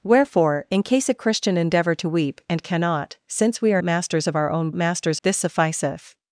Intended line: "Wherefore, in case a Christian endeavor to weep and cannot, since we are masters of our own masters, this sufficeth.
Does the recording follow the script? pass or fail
pass